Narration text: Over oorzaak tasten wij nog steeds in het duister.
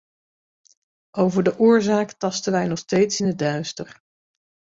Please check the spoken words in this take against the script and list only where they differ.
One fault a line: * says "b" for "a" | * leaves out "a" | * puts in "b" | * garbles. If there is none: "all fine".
* puts in "de"